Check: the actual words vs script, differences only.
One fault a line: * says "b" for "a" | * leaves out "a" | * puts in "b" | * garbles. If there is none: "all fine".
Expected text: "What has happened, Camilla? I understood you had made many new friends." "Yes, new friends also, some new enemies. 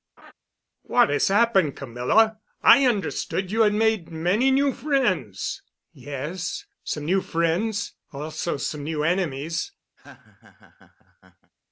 * puts in "some"